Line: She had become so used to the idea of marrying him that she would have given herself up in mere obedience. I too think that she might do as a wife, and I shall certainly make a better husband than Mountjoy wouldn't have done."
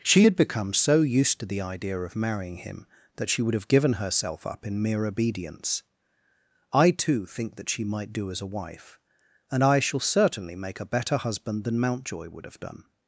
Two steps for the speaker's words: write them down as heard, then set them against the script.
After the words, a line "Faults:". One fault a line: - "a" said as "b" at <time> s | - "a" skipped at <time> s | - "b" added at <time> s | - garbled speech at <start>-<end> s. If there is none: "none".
She had become so used to the idea of marrying him that she would have given herself up in mere obedience. I too think that she might do as a wife, and I shall certainly make a better husband than Mountjoy would have done."
Faults:
- "wouldn't" said as "would" at 12.3 s